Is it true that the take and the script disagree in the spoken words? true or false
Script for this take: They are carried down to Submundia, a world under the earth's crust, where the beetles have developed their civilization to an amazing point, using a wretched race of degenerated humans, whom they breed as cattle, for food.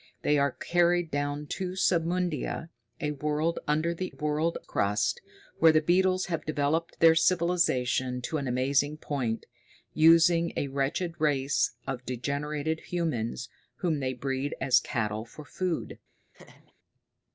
true